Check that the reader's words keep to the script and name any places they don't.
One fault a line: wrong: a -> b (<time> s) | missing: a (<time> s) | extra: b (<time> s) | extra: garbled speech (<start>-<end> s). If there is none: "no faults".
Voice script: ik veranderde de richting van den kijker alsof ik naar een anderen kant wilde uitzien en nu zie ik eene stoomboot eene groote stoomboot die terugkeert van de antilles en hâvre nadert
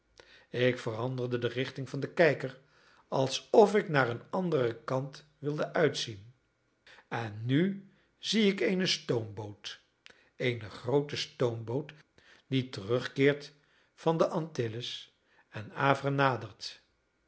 no faults